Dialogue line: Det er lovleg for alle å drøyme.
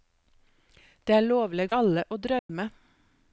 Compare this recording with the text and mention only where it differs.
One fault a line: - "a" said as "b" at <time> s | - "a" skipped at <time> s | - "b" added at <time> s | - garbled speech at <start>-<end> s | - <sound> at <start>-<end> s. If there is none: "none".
- "for" skipped at 1.7 s
- dropout at 2.4-2.5 s